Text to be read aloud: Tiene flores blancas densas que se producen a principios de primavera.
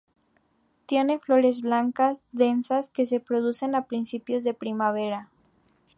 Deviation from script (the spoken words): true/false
false